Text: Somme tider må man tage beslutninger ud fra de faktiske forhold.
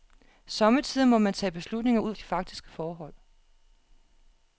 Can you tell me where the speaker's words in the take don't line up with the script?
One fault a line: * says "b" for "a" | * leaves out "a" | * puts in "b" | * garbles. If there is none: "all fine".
* leaves out "fra"